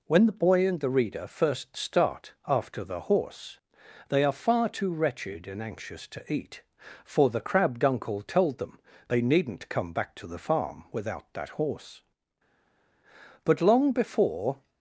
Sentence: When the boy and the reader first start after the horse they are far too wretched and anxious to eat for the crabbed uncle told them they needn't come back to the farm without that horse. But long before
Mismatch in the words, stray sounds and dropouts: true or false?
false